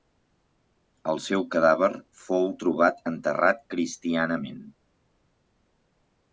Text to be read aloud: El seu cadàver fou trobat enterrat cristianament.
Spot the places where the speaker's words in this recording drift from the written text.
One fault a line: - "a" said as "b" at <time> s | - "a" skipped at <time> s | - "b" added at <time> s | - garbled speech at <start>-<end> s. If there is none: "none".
none